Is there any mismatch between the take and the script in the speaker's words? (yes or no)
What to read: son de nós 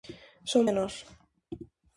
no